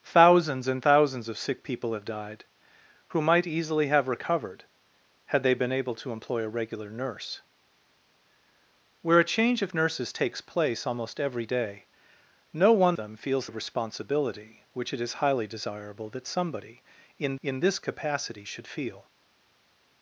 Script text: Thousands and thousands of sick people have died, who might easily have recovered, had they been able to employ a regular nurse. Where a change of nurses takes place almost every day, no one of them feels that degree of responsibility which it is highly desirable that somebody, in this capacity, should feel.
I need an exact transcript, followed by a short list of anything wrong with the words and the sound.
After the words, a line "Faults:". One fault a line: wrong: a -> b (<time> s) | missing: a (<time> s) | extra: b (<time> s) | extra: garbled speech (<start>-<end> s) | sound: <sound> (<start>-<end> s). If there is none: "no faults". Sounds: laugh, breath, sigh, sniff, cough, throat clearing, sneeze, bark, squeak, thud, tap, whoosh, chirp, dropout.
Thousands and thousands of sick people have died, who might easily have recovered, had they been able to employ a regular nurse. Where a change of nurses takes place almost every day, no one them feels of responsibility which it is highly desirable that somebody, in in this capacity, should feel.
Faults:
missing: of (13.0 s)
missing: that degree (13.5 s)
extra: in (17.4 s)